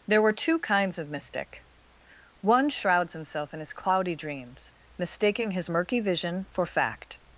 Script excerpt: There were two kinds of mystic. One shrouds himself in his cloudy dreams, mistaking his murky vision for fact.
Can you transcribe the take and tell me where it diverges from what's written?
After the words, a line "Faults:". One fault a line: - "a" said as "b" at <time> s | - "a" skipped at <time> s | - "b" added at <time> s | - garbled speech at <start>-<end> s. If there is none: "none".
There were two kinds of mystic. One shrouds himself in his cloudy dreams, mistaking his murky vision for fact.
Faults:
none